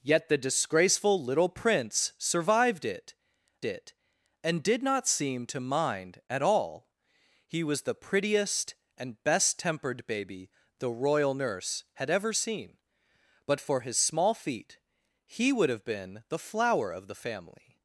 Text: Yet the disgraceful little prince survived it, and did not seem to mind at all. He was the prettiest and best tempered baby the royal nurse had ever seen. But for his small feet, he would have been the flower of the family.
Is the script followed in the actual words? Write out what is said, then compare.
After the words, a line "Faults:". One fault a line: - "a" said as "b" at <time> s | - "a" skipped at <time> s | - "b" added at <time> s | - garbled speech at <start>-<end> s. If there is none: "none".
Yet the disgraceful little prince survived it it, and did not seem to mind at all. He was the prettiest and best tempered baby the royal nurse had ever seen. But for his small feet, he would have been the flower of the family.
Faults:
- "it" added at 3.6 s